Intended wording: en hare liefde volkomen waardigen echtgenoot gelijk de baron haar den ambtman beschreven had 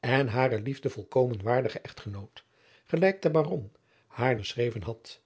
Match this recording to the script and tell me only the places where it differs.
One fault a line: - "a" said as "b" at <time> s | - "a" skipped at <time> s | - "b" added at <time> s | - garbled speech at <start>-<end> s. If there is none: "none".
- "den ambtman" skipped at 4.4 s